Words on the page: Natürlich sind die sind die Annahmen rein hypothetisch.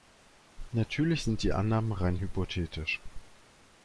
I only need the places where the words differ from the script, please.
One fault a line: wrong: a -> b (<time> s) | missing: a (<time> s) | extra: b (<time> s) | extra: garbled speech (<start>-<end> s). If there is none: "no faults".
missing: sind die (1.5 s)